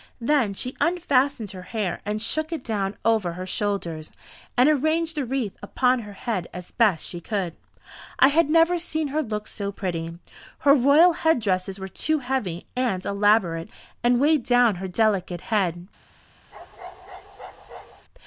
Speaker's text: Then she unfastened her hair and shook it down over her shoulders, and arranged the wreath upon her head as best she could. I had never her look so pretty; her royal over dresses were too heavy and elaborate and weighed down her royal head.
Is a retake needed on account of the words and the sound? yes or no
yes